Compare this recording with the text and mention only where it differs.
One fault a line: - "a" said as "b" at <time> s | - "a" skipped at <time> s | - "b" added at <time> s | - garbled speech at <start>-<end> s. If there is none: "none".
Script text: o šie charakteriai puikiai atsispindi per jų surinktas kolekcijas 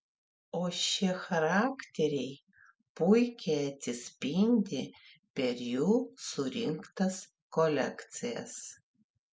none